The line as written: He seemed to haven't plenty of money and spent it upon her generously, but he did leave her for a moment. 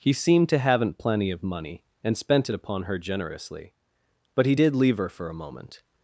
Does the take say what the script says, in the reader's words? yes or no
yes